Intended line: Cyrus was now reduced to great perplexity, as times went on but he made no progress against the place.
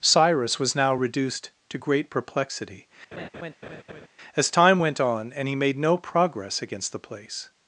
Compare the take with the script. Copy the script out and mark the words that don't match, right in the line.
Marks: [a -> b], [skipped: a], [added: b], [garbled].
Cyrus was now reduced to great perplexity, as [times -> time] went on [but -> and] he made no progress against the place.